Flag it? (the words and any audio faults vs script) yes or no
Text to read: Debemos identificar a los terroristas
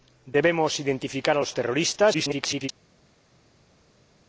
yes